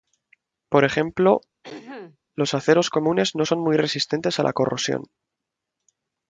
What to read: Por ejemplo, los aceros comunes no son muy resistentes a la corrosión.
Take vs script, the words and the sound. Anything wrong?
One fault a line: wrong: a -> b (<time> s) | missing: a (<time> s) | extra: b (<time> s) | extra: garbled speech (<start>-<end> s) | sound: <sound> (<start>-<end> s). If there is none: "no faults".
sound: throat clearing (1.6-2.2 s)